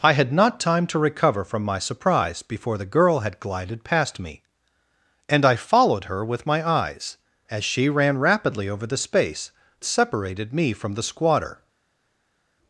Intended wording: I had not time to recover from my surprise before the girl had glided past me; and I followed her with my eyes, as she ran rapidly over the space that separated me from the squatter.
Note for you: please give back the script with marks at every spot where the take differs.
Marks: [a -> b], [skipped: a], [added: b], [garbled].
I had not time to recover from my surprise before the girl had glided past me; and I followed her with my eyes, as she ran rapidly over the space [skipped: that] separated me from the squatter.